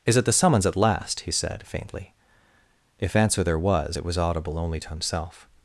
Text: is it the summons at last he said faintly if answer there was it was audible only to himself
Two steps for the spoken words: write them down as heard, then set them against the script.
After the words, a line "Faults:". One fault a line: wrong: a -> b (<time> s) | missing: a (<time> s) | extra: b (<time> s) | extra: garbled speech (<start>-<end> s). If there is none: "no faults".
is it the summons at last he said faintly if answer there was it was audible only to himself
Faults:
no faults